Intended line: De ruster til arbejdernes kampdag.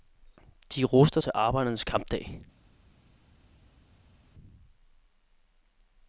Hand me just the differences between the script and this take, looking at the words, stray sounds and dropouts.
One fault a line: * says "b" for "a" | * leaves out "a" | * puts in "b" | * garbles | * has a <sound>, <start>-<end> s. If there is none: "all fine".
all fine